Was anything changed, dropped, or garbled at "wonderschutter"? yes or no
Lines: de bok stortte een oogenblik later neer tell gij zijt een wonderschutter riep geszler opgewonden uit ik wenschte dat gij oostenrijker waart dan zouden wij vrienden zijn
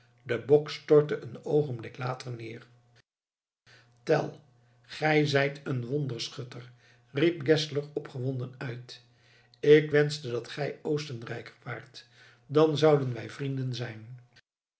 no